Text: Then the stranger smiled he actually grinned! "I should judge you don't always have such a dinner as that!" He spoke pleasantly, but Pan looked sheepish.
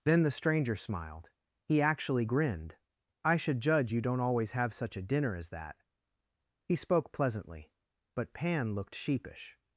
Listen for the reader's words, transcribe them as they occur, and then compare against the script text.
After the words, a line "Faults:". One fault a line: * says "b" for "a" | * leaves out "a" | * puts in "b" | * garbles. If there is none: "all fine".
Then the stranger smiled he actually grinned! "I should judge you don't always have such a dinner as that!" He spoke pleasantly, but Pan looked sheepish.
Faults:
all fine